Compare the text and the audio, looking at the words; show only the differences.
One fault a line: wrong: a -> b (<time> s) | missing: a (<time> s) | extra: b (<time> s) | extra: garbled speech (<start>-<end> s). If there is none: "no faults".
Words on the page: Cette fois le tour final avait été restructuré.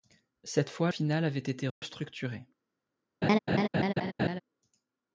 missing: le tour (0.9 s)